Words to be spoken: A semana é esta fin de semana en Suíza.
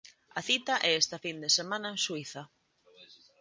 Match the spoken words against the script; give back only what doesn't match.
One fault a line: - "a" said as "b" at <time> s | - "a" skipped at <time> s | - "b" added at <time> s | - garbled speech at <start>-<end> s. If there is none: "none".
- "semana" said as "cita" at 0.5 s